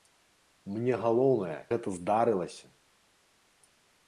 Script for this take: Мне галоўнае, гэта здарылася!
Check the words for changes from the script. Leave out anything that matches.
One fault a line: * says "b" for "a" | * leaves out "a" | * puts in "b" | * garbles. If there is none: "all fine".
all fine